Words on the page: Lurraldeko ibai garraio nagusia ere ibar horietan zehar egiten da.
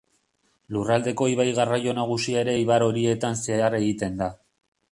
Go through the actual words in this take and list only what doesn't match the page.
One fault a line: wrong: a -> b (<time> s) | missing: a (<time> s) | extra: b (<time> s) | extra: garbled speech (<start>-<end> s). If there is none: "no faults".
no faults